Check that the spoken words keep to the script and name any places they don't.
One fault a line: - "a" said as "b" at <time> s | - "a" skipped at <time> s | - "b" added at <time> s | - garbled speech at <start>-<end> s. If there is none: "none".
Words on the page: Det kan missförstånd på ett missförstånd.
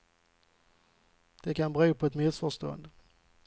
- "missförstånd" said as "bero" at 1.7 s